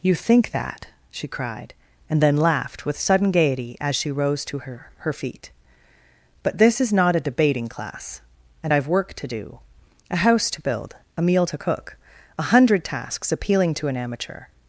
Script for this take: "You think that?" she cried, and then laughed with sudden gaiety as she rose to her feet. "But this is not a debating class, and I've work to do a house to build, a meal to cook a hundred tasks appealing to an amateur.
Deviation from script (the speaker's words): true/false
true